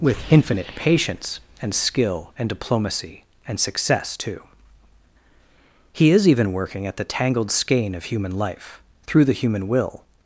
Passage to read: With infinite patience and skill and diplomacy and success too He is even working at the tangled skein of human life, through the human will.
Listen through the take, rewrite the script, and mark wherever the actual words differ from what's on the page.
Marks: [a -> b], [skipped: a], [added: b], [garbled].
With infinite patience and skill and diplomacy and success too He is even working at the tangled skein of human life, through the human will.